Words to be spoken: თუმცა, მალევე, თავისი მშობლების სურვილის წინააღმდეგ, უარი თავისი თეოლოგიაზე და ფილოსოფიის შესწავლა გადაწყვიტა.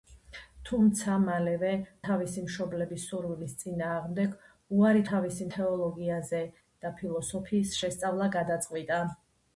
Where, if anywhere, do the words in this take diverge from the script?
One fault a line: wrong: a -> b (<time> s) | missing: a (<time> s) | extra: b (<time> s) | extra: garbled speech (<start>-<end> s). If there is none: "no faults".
no faults